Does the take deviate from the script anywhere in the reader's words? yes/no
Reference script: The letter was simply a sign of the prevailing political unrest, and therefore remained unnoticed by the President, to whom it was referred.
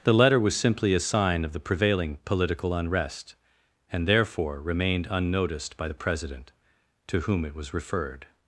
no